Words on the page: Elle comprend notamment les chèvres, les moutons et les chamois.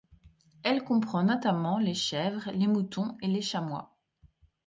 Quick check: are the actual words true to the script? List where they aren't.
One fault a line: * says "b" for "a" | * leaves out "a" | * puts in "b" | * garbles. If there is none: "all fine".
all fine